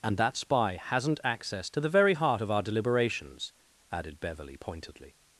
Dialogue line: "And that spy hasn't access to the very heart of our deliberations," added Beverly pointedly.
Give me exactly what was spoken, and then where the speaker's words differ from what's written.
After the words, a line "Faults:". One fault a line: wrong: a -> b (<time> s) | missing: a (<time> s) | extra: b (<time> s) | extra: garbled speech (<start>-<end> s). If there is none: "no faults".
"And that spy hasn't access to the very heart of our deliberations," added Beverly pointedly.
Faults:
no faults